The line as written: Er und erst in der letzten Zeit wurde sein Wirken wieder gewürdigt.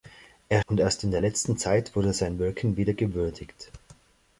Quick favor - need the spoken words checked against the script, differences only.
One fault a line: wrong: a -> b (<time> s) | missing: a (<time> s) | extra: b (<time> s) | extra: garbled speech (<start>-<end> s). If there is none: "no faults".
no faults